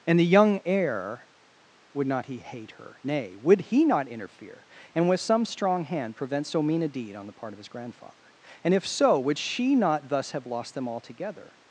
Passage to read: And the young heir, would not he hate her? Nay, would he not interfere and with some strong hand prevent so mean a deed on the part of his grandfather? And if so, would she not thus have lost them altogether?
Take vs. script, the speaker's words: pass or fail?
pass